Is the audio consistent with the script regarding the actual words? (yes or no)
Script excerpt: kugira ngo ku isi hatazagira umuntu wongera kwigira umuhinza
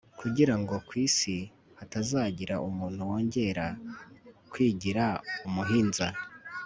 yes